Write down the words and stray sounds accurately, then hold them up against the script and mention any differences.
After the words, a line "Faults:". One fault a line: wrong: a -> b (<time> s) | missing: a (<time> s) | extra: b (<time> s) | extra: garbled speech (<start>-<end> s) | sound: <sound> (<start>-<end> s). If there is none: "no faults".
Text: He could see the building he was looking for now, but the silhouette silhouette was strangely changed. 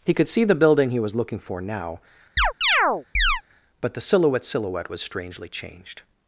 He could see the building he was looking for now, but the silhouette silhouette was strangely changed.
Faults:
sound: chirp (2.4-3.4 s)